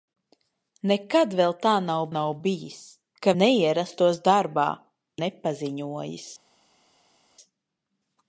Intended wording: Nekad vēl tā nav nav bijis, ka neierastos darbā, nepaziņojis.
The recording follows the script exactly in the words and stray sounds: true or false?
true